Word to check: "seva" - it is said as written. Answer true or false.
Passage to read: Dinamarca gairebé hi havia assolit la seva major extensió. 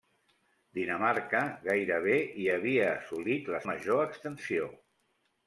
false